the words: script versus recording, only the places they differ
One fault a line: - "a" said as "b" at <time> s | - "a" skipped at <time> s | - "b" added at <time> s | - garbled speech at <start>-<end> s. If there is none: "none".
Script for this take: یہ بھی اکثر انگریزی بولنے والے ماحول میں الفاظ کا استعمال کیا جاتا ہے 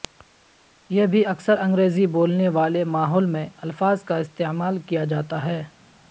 none